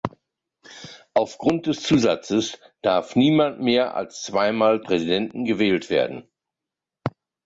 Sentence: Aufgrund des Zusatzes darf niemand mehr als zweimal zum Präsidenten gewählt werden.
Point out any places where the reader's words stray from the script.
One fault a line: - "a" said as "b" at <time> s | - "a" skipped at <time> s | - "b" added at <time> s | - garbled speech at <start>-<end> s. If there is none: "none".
- "zum" skipped at 4.8 s